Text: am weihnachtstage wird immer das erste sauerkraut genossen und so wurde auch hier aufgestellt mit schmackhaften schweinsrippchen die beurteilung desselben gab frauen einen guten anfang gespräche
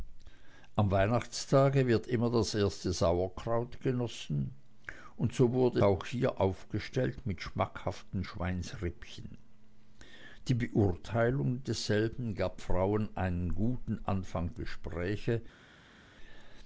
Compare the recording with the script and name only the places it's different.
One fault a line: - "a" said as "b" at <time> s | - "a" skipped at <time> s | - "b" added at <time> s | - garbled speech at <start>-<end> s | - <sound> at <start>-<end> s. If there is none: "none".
none